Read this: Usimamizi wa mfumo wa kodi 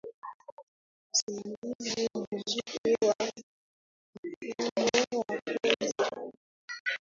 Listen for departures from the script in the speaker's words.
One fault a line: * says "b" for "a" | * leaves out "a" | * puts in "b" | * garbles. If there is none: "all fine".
* puts in "mzuri"